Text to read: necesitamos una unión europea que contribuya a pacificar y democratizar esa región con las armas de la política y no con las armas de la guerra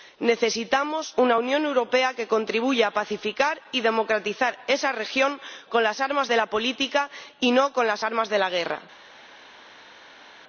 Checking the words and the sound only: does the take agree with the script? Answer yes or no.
yes